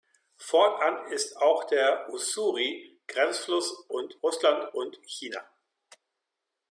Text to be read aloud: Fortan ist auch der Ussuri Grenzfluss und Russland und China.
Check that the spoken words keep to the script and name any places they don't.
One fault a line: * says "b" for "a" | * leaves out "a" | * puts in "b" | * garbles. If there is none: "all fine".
all fine